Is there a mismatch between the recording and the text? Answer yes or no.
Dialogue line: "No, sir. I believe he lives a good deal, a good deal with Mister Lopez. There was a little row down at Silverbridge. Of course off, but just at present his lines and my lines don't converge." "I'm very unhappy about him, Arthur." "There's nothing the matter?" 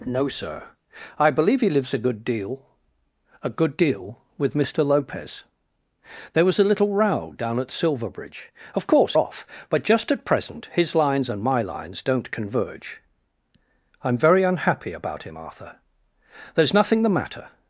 no